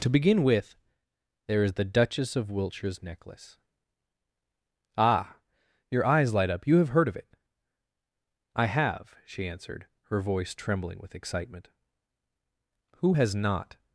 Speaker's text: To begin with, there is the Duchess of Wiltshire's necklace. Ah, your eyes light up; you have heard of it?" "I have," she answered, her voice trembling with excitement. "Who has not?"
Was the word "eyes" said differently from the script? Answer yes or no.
no